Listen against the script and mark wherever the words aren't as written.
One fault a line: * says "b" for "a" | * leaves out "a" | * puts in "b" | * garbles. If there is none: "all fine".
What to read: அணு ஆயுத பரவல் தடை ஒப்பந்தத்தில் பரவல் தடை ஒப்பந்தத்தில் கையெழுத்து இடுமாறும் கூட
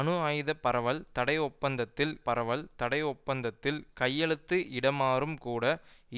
all fine